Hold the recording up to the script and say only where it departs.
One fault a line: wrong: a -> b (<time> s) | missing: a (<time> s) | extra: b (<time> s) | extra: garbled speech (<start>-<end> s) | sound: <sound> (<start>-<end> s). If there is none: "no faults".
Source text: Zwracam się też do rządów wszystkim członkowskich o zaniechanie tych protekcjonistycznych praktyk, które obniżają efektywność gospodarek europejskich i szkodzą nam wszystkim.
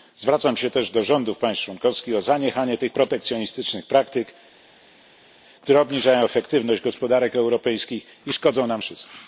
wrong: wszystkim -> państw (1.4 s)